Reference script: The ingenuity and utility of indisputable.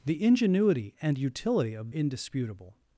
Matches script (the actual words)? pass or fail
pass